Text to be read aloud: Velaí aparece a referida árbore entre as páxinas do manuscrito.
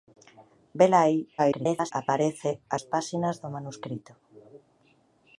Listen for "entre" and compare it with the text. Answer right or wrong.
wrong